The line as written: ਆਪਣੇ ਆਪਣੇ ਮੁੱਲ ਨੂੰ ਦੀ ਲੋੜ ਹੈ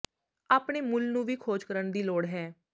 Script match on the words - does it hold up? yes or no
no